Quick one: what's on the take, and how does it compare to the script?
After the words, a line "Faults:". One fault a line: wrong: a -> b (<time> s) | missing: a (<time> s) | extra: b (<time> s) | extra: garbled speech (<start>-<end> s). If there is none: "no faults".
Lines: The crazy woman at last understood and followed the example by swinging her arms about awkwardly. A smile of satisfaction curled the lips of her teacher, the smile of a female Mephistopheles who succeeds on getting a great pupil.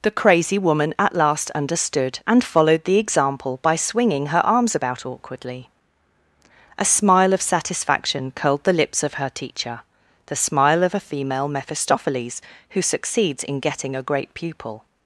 The crazy woman at last understood and followed the example by swinging her arms about awkwardly. A smile of satisfaction curled the lips of her teacher, the smile of a female Mephistopheles who succeeds in getting a great pupil.
Faults:
wrong: on -> in (13.4 s)